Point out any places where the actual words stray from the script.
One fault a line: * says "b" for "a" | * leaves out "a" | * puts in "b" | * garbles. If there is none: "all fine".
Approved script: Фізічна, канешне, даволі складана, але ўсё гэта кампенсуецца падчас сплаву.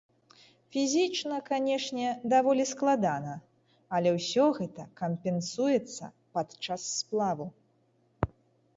all fine